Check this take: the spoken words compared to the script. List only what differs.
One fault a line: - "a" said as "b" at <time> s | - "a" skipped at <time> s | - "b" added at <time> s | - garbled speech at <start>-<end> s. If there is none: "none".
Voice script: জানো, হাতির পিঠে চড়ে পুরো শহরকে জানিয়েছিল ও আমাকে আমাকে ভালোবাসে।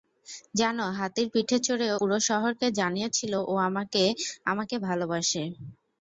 none